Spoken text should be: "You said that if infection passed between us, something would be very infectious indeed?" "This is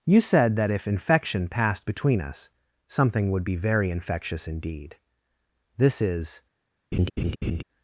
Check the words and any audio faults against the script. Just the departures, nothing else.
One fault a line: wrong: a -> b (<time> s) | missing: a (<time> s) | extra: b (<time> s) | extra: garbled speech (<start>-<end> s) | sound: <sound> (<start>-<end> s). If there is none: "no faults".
sound: laugh (6.9-7.6 s)